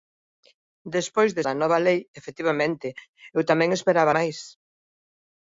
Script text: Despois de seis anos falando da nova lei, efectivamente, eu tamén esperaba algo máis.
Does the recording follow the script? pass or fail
fail